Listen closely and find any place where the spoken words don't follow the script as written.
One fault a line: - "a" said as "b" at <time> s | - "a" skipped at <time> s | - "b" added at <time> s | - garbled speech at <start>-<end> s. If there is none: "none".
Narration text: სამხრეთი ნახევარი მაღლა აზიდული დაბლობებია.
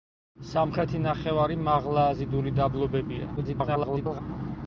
- garbled speech at 3.4-4.2 s